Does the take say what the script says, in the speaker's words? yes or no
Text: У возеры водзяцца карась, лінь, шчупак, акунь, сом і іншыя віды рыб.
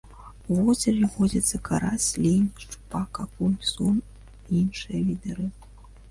yes